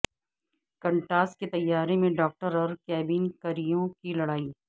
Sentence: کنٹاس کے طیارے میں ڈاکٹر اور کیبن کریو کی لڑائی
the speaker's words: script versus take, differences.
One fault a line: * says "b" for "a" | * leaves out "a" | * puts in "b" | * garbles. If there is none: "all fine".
all fine